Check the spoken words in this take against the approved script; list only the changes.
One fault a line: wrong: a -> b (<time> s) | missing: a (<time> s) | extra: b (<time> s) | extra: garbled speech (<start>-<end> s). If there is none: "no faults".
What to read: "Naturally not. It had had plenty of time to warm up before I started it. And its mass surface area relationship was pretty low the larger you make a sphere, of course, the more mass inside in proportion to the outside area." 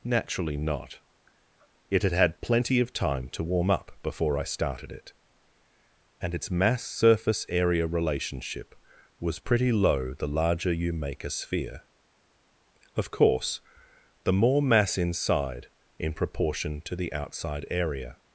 no faults